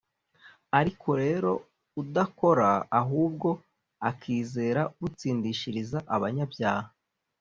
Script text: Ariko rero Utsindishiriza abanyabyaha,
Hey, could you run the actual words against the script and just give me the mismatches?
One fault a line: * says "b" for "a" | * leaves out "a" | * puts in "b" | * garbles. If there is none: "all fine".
* puts in "udakora ahubwo akizera"